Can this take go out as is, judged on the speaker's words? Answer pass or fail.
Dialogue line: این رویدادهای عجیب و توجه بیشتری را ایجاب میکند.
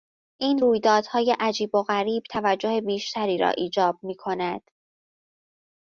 fail